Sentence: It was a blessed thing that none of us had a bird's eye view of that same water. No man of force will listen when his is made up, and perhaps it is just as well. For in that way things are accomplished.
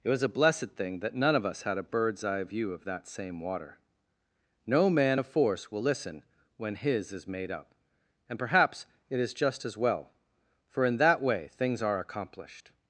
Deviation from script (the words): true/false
false